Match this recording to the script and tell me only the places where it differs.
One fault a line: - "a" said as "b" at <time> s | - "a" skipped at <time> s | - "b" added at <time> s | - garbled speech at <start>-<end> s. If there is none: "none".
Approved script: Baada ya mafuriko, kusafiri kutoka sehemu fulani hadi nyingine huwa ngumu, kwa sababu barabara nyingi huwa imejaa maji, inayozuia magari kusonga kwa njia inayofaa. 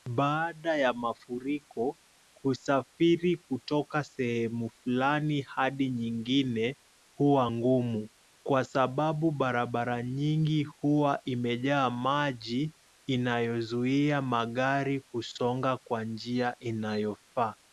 none